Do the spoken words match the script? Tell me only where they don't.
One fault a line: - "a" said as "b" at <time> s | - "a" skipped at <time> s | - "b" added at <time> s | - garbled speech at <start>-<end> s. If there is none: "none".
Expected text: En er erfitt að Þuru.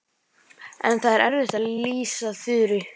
- "það" added at 1.1 s
- "lýsa" added at 1.8 s